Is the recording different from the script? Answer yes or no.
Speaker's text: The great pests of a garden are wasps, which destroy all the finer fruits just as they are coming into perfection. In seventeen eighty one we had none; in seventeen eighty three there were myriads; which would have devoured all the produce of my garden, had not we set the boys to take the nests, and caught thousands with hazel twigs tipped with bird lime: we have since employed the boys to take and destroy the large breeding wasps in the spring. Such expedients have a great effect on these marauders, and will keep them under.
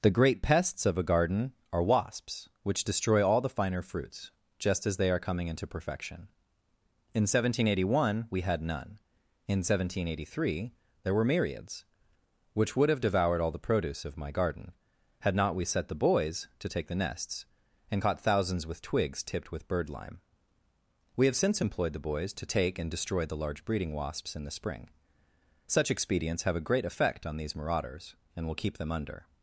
yes